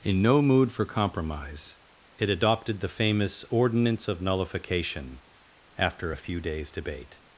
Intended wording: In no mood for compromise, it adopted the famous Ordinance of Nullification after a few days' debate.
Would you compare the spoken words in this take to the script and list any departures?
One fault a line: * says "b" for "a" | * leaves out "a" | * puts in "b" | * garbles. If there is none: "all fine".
all fine